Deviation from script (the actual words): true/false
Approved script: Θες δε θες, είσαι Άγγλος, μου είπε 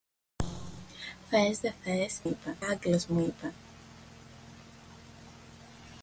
true